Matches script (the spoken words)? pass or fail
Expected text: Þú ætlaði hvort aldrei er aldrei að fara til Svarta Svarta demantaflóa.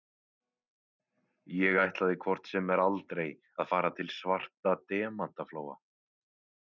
fail